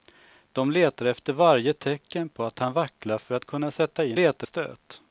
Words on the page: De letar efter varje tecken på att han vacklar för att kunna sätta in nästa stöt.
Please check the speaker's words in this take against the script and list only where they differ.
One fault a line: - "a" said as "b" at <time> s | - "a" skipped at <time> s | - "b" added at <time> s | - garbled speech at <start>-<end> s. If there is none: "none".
- "nästa" said as "letar" at 4.1 s